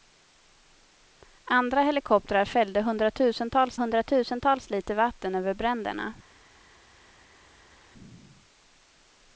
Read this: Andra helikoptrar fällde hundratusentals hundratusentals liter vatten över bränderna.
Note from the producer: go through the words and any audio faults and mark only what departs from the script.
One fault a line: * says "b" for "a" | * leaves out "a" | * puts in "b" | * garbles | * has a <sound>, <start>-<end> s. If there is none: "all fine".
all fine